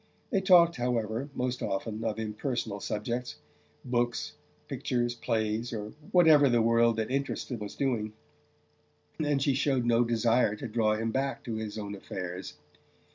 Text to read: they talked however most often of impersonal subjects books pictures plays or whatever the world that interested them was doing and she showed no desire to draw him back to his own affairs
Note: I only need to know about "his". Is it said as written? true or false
true